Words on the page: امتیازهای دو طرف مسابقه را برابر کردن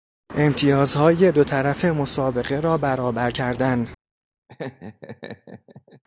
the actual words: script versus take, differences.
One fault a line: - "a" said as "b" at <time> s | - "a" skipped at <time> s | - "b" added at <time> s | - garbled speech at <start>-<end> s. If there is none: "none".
none